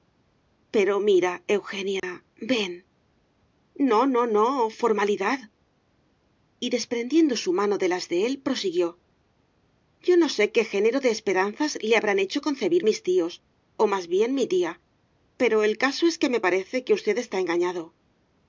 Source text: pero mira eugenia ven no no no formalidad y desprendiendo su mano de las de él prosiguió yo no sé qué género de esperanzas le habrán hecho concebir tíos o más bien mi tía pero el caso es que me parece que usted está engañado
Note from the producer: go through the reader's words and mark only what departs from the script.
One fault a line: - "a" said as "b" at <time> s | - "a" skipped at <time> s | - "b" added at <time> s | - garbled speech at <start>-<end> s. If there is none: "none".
- "mis" added at 12.9 s